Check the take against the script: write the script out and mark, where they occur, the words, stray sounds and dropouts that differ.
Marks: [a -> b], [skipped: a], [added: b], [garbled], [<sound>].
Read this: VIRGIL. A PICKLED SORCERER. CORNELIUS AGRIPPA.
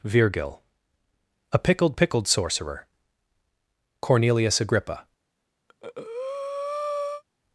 VIRGIL. A PICKLED [added: PICKLED] SORCERER. CORNELIUS AGRIPPA. [breath]